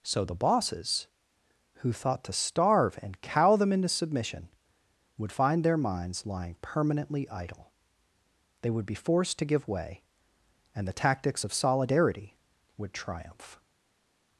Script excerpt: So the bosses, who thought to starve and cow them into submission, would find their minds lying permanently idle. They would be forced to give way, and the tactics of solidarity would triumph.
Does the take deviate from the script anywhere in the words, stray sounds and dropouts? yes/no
no